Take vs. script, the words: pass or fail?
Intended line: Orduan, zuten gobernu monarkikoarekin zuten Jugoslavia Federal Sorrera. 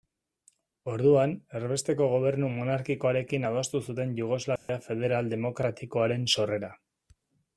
fail